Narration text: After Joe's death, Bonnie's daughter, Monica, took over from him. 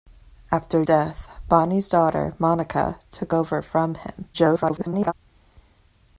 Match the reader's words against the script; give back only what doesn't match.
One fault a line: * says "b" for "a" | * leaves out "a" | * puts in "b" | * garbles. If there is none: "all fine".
* leaves out "Joe's"
* garbles